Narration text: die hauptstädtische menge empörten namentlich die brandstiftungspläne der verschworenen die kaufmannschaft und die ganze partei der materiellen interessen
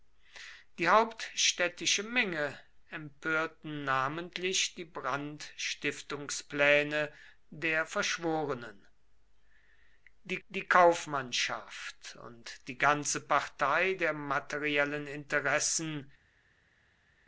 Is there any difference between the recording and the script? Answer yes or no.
yes